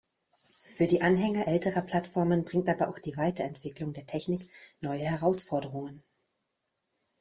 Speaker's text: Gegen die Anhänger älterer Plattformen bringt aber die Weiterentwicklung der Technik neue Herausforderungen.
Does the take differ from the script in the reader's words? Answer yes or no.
yes